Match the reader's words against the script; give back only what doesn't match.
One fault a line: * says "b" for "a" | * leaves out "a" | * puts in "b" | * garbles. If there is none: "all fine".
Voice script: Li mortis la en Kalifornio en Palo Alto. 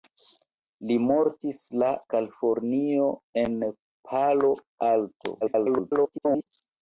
* leaves out "en"
* garbles